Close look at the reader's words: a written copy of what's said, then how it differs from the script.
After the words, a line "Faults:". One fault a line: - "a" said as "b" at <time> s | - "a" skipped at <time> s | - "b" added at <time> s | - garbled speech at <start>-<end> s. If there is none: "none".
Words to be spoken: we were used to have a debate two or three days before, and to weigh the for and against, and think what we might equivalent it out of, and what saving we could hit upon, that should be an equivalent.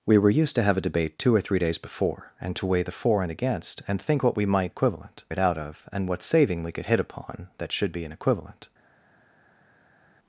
we were used to have a debate two or three days before, and to weigh the for and against, and think what we might equivalent it out of, and what saving we could hit upon, that should be an equivalent.
Faults:
none